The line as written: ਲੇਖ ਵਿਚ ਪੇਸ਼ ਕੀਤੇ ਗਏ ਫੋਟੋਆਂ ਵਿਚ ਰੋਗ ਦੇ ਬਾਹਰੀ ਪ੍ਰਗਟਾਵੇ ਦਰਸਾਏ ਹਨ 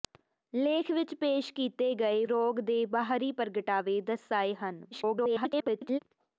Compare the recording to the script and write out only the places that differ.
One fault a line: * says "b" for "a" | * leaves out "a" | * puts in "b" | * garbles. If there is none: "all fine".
* leaves out "ਫੋਟੋਆਂ ਵਿਚ"
* garbles